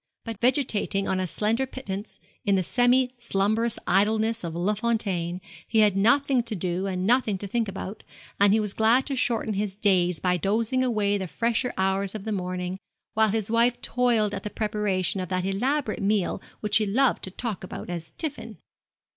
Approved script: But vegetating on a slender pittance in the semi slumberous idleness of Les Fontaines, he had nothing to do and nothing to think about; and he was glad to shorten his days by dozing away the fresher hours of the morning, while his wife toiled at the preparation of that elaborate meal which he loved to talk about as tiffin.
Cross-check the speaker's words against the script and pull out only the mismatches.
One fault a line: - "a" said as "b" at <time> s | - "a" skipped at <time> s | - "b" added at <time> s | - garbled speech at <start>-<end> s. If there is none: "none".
none